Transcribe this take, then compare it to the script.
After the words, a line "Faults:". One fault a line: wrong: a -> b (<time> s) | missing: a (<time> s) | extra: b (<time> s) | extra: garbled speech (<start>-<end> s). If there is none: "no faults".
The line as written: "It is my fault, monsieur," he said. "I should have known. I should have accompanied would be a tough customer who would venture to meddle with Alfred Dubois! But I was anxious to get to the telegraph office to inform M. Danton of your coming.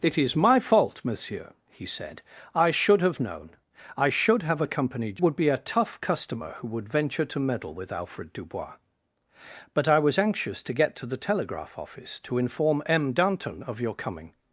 "It is my fault, monsieur," he said. "I should have known. I should have accompanied would be a tough customer who would venture to meddle with Alfred Dubois! But I was anxious to get to the telegraph office to inform M. Danton of your coming.
Faults:
no faults